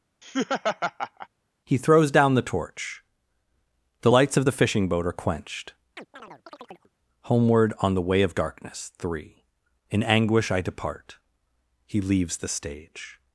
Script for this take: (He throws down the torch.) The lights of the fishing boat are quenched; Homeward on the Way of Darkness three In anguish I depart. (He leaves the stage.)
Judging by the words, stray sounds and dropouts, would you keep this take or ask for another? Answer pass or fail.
fail